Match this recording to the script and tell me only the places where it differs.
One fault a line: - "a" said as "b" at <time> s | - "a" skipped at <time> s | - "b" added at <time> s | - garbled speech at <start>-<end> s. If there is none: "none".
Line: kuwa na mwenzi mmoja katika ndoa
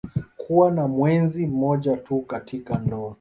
- "tu" added at 2.0 s